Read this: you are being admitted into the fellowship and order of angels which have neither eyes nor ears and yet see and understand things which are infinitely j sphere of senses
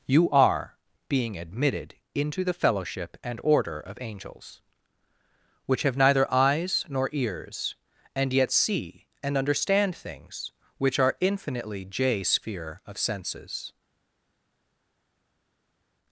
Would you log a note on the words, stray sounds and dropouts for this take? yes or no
no